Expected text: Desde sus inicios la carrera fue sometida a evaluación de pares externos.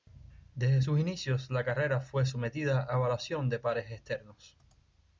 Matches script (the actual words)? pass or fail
pass